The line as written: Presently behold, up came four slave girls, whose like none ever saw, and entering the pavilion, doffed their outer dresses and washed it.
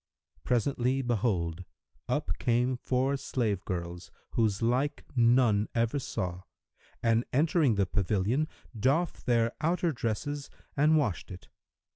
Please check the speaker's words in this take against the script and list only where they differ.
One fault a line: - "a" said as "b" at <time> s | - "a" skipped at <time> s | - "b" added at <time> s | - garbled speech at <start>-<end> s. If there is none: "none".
none